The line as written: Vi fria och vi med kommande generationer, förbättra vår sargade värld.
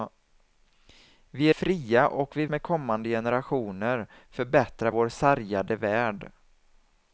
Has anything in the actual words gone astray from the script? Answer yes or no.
no